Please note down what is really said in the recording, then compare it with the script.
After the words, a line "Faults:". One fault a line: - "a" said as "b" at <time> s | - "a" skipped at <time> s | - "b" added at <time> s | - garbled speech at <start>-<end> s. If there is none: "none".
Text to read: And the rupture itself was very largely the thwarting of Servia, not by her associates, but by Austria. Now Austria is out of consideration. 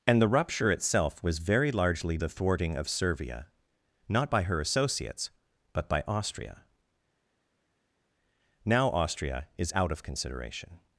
And the rupture itself was very largely the thwarting of Servia, not by her associates, but by Austria. Now Austria is out of consideration.
Faults:
none